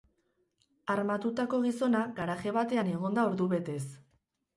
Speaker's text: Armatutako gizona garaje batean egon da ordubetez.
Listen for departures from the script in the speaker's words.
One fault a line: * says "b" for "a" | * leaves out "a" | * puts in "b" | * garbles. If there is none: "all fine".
all fine